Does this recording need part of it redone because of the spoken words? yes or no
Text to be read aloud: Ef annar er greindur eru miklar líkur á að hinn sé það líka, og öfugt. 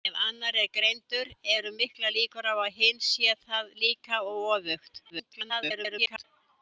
yes